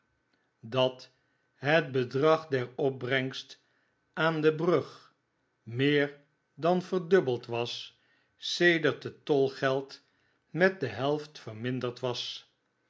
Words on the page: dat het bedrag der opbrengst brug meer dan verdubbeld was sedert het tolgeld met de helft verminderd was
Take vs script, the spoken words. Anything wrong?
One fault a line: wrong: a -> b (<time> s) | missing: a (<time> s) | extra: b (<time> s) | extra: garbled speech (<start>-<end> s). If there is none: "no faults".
extra: aan de (4.1 s)